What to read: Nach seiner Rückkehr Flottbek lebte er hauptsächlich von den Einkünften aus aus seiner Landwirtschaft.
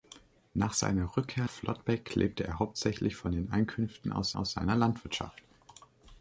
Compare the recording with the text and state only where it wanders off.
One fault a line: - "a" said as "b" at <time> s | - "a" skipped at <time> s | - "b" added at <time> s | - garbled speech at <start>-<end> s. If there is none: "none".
none